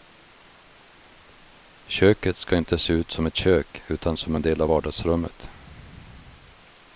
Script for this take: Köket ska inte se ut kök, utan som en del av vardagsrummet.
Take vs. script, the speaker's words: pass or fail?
fail